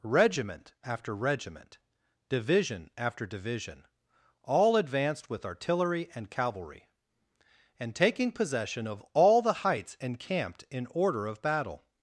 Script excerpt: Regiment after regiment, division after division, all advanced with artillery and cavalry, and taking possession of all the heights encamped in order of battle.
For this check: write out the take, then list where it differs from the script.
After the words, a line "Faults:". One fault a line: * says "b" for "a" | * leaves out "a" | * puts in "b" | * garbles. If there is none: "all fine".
Regiment after regiment, division after division, all advanced with artillery and cavalry, and taking possession of all the heights encamped in order of battle.
Faults:
all fine